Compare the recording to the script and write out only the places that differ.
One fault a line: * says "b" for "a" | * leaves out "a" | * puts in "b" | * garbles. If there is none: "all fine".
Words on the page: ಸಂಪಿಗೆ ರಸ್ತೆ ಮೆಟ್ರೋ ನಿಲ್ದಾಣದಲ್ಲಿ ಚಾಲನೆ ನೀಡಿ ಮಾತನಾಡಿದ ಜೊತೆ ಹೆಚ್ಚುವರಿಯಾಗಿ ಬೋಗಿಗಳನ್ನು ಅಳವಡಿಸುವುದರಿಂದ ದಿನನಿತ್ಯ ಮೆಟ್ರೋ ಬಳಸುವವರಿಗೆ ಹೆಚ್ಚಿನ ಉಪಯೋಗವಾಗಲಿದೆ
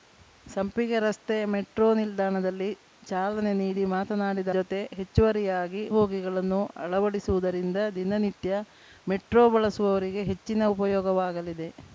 all fine